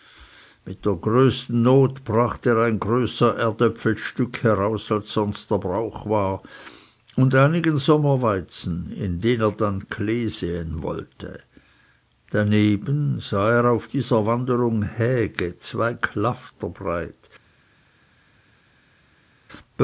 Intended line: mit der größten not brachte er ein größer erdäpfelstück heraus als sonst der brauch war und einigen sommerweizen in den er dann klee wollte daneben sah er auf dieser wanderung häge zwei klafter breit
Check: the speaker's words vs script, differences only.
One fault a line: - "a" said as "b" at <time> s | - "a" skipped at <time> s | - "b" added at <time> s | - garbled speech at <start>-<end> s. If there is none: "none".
- "säen" added at 10.3 s